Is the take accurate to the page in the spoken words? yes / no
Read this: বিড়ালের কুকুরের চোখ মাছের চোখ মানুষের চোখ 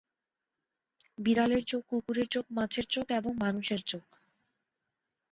no